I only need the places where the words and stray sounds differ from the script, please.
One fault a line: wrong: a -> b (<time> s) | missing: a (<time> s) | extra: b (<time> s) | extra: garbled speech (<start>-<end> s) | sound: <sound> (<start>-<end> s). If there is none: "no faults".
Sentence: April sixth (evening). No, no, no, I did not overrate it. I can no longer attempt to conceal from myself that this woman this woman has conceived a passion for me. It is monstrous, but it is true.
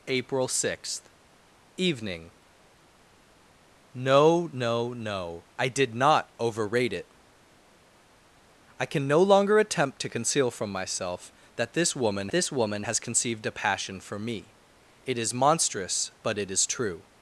no faults